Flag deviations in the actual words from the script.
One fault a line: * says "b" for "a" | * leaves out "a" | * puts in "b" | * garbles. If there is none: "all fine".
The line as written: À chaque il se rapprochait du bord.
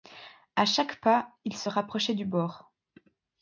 * puts in "pas"